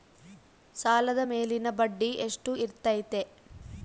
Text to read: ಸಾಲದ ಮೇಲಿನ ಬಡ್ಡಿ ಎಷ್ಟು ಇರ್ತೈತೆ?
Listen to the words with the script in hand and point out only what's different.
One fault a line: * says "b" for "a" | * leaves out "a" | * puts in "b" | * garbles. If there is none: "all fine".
all fine